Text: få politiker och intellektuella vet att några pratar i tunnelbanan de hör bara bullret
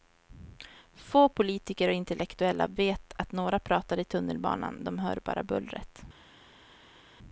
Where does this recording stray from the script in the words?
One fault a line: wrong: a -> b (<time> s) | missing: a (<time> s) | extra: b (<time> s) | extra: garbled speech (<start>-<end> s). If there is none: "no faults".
no faults